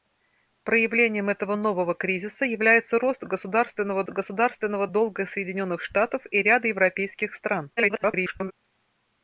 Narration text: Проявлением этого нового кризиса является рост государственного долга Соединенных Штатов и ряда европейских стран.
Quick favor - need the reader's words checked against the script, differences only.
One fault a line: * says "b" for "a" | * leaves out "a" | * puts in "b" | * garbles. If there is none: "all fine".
* puts in "государственного"
* garbles